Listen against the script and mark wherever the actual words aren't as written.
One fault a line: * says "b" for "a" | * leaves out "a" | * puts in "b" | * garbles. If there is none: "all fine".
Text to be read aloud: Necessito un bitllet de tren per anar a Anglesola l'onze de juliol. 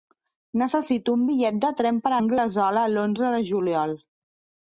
* leaves out "anar a"